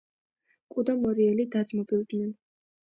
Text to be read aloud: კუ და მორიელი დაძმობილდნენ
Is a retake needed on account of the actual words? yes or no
no